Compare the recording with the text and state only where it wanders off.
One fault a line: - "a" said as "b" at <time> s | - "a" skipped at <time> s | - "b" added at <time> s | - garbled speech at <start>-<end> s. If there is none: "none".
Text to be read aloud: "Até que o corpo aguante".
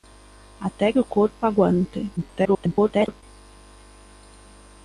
- "que" skipped at 0.9 s
- garbled speech at 2.2-3.2 s